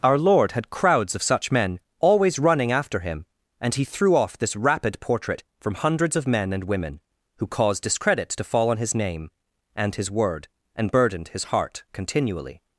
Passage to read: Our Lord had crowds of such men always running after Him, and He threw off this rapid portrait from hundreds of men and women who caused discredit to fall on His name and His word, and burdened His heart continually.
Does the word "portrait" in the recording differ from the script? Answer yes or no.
no